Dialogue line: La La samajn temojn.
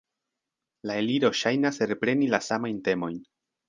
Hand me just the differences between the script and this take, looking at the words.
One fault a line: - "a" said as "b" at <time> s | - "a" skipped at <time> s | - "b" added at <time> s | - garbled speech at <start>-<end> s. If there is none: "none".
- "Eliro ŝajnas repreni" added at 1.0 s